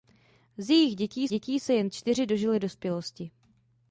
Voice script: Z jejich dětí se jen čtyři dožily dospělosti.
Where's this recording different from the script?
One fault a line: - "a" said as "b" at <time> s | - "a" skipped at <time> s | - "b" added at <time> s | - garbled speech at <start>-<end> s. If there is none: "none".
- "dětí" added at 1.3 s